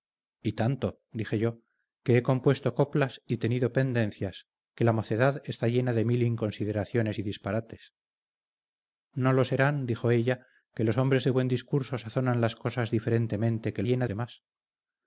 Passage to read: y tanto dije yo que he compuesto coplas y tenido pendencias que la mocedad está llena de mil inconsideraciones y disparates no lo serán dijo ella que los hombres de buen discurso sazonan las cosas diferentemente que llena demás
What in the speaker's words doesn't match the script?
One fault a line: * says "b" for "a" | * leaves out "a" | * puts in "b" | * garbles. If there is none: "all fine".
all fine